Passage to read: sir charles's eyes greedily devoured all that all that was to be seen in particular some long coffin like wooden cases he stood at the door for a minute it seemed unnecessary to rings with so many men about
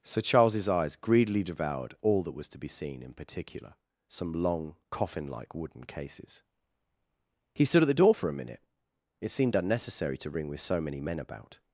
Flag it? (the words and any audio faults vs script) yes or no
yes